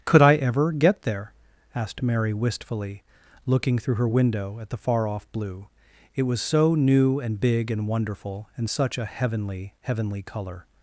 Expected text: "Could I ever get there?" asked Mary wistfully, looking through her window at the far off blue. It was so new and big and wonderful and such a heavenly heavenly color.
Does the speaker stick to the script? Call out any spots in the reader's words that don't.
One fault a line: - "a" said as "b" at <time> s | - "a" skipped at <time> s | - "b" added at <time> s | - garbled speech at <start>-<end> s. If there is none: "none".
none